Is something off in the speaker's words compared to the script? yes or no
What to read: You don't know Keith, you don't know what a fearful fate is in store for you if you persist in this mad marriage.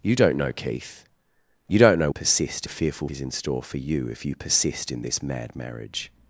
yes